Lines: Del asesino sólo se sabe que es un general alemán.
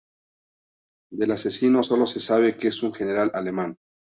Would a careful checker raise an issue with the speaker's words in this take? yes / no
no